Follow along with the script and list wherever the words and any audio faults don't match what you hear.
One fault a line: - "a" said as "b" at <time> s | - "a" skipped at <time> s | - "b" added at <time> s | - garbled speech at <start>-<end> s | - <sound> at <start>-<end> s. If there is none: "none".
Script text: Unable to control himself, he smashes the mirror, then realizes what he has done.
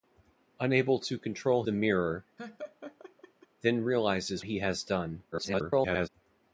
- "himself he smashes" skipped at 1.6 s
- laugh at 2.4-3.5 s
- "what" skipped at 4.4 s
- garbled speech at 5.3-6.1 s